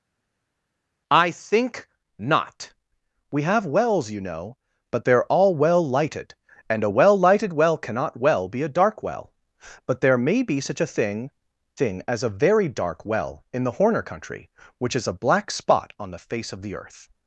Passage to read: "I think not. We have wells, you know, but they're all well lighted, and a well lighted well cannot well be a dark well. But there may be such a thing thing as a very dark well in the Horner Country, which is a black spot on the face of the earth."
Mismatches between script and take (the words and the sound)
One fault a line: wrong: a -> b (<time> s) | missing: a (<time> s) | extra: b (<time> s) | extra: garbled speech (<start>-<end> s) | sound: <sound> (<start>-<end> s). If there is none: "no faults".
no faults